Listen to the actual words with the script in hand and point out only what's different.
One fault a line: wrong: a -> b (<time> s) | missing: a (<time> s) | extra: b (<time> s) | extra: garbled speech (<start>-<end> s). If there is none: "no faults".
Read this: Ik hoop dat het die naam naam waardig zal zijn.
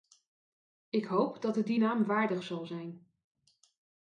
missing: naam (2.0 s)